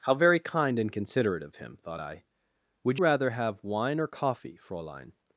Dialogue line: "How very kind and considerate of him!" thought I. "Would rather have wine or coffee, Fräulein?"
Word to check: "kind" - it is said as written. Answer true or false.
true